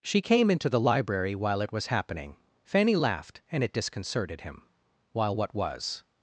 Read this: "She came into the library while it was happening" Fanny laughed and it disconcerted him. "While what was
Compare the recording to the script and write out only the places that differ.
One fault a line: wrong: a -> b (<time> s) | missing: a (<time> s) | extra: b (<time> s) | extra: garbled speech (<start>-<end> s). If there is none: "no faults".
no faults